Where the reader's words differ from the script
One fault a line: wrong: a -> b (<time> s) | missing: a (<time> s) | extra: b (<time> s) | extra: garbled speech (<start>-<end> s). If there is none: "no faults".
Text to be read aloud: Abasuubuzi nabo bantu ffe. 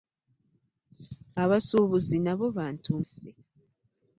no faults